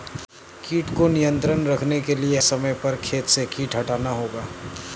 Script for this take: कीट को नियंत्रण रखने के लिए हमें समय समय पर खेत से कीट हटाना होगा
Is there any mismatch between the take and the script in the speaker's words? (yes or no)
yes